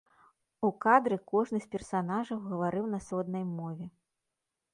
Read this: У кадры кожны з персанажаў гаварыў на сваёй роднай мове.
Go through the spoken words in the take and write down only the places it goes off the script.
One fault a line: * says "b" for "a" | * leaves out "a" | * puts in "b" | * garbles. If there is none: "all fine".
* leaves out "сваёй"